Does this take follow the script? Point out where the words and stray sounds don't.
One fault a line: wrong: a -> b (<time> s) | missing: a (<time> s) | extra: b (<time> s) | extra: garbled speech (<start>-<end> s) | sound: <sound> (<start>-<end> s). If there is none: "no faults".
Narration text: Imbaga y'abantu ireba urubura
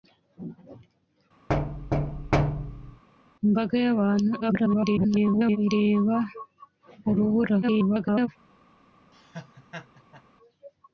sound: thud (1.5-3.0 s)
extra: garbled speech (4.4-5.6 s)
extra: garbled speech (7.6-8.3 s)
sound: laugh (9.1-10.2 s)